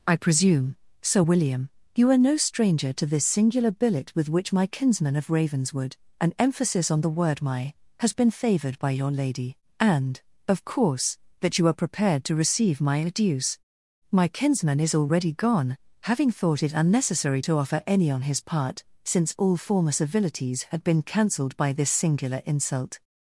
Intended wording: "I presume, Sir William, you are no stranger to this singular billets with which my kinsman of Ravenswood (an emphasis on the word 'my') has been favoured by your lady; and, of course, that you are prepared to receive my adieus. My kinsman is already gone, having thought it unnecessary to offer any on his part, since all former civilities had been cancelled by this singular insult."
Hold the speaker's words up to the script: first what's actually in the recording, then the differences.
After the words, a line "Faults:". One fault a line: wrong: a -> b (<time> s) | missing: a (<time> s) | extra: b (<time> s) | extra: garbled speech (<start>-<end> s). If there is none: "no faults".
"I presume, Sir William, you are no stranger to this singular billet with which my kinsman of Ravenswood (an emphasis on the word 'my') has been favoured by your lady; and, of course, that you are prepared to receive my adieus. My kinsman is already gone, having thought it unnecessary to offer any on his part, since all former civilities had been cancelled by this singular insult."
Faults:
wrong: billets -> billet (3.7 s)